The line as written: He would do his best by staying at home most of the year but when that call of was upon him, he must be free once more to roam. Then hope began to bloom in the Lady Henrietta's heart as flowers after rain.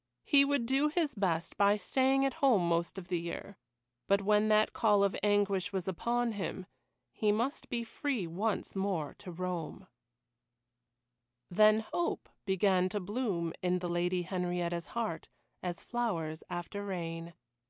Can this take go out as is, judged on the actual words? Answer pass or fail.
fail